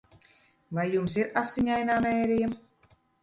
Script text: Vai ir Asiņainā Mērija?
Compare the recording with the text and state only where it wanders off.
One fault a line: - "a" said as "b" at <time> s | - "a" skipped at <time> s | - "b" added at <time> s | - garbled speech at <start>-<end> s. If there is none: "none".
- "jums" added at 0.9 s